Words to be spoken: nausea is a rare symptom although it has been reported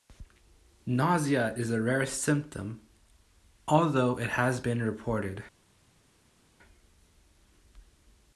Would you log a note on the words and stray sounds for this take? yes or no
no